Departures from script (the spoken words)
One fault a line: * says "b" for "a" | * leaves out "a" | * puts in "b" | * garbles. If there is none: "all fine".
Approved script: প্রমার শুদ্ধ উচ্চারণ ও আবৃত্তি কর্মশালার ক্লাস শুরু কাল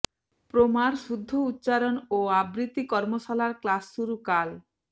all fine